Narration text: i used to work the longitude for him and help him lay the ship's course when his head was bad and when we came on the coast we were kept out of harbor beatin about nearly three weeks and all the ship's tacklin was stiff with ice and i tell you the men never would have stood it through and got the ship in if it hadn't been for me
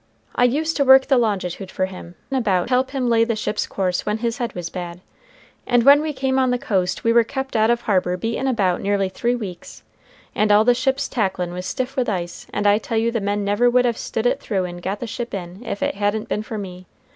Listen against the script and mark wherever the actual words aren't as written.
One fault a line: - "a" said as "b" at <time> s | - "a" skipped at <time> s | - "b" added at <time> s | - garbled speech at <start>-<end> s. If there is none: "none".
- "and" said as "about" at 2.3 s